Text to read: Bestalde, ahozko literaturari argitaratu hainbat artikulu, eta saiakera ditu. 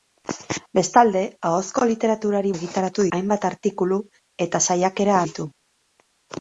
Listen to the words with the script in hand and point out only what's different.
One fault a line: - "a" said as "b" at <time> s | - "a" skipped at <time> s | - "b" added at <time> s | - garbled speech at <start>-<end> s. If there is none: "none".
none